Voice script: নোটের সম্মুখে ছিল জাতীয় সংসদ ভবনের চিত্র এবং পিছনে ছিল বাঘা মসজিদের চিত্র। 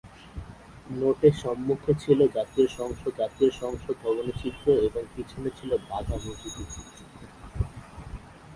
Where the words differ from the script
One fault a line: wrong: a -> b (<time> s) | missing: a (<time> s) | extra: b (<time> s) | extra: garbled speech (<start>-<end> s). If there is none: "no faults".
extra: জাতীয় সংসদ (3.2 s)